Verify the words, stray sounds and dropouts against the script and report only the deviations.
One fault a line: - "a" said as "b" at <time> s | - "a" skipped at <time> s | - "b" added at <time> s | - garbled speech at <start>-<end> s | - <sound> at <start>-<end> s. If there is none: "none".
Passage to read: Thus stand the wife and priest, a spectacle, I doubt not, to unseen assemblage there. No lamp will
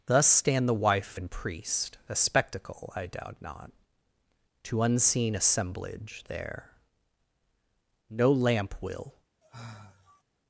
- sigh at 9.4-10.2 s